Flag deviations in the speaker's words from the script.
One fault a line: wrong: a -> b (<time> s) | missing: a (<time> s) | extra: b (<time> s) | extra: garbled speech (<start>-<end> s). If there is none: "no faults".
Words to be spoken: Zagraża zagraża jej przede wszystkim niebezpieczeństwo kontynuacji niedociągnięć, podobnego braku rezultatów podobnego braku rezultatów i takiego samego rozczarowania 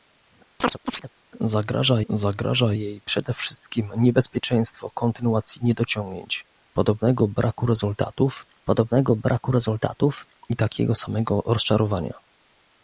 no faults